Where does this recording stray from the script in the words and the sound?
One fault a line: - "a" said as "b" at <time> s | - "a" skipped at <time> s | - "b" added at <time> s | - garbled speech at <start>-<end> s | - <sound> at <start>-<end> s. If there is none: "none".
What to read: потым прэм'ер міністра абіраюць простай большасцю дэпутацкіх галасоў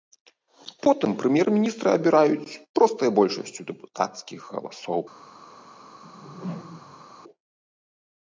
- whoosh at 6.0-7.1 s